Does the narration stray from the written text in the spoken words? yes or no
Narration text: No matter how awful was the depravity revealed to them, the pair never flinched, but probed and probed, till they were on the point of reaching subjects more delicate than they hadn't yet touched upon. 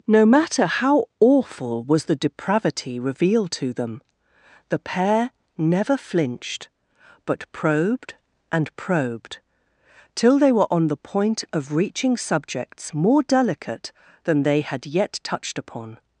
yes